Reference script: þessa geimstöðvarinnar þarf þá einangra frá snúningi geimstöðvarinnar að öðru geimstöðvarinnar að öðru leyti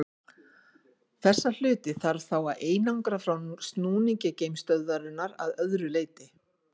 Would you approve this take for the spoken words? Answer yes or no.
no